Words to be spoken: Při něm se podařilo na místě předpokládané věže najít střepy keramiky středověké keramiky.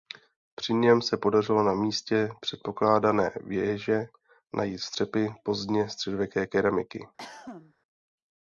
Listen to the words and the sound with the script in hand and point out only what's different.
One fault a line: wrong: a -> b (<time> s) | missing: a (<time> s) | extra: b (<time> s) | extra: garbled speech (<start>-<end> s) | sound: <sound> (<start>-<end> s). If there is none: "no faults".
wrong: keramiky -> pozdně (5.4 s)
sound: cough (7.2-7.7 s)